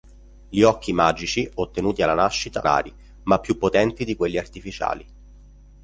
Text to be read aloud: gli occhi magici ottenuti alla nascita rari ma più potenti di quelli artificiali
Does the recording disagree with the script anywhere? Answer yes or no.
no